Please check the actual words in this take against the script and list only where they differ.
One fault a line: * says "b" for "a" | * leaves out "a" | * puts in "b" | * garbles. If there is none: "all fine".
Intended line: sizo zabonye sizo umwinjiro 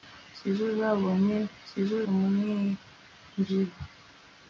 all fine